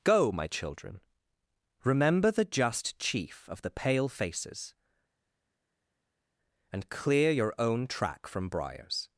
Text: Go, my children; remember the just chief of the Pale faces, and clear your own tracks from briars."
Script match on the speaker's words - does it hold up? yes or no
no